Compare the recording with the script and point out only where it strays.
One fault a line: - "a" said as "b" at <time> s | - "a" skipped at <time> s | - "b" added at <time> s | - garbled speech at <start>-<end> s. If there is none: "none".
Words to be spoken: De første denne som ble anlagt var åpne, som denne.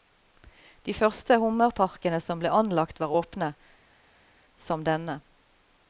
- "denne" said as "hummerparkene" at 1.4 s